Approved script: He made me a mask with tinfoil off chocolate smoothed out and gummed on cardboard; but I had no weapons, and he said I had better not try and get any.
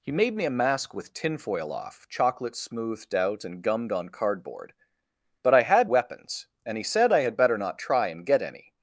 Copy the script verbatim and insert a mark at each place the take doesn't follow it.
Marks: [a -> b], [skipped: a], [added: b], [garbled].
He made me a mask with tinfoil off chocolate smoothed out and gummed on cardboard; but I had [skipped: no] weapons, and he said I had better not try and get any.